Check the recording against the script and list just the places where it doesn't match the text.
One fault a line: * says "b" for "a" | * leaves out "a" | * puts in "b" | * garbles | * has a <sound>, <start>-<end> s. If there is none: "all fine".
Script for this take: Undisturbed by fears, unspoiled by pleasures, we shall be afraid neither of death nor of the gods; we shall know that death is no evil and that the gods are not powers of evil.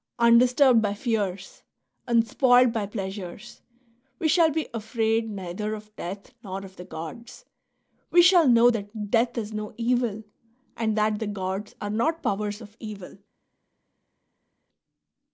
all fine